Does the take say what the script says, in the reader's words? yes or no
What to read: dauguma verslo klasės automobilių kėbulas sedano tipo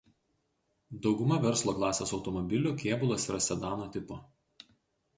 no